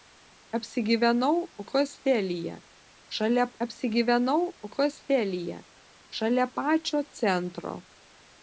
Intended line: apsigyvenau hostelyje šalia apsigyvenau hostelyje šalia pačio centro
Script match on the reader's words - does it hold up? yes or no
yes